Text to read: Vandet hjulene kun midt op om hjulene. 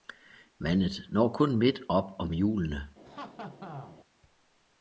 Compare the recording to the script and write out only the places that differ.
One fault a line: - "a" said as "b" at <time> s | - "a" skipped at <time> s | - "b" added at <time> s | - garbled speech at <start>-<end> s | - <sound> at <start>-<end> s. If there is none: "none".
- "hjulene" said as "når" at 1.1 s
- laugh at 3.0-4.0 s